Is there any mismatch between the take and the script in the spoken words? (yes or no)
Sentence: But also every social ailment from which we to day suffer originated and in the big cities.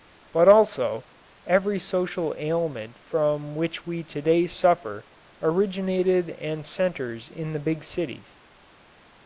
yes